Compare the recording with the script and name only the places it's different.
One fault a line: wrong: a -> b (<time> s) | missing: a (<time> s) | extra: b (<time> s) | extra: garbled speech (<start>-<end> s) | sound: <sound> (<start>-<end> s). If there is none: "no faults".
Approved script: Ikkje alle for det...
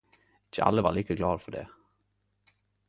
extra: var like glade (0.8 s)